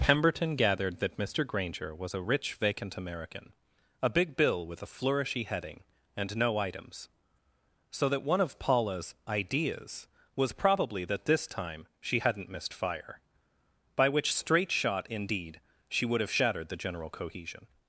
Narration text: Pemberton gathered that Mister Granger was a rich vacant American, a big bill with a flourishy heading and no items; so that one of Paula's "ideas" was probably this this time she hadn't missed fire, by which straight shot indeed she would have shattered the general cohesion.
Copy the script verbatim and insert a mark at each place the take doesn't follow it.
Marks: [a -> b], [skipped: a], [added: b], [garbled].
Pemberton gathered that Mister Granger was a rich vacant American, a big bill with a flourishy heading and no items; so that one of Paula's "ideas" was probably [this -> that] this time she hadn't missed fire, by which straight shot indeed she would have shattered the general cohesion.